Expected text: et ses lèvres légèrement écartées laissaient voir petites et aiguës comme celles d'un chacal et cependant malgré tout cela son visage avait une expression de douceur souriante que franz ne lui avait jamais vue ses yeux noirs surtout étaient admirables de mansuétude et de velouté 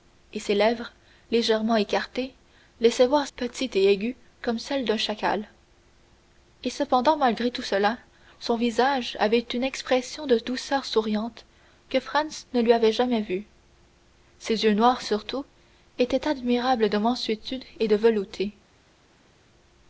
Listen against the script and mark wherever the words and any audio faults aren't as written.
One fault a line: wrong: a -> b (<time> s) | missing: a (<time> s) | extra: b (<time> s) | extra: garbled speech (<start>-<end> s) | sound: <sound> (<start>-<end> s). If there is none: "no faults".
no faults